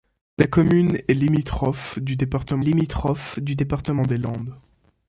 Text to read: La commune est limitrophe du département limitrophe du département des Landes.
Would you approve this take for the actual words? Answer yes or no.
yes